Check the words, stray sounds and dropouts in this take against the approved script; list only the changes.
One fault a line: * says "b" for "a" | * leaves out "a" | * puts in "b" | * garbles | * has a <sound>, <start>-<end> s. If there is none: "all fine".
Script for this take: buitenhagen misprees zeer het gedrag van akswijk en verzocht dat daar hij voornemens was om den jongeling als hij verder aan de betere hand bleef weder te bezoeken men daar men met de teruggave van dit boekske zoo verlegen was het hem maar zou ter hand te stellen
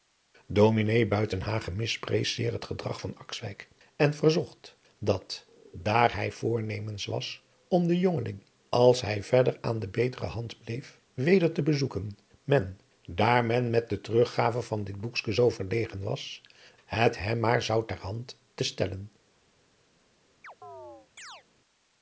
* has a chirp, 20.4-21.4 s